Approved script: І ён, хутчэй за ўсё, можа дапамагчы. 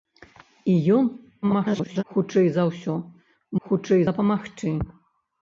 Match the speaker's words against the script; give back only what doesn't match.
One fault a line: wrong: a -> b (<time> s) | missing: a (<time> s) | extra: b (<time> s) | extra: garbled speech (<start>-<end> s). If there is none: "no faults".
extra: garbled speech (1.4-2.0 s)
wrong: можа -> хутчэй (3.7 s)